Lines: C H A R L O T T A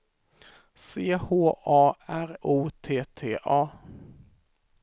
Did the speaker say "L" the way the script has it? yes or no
no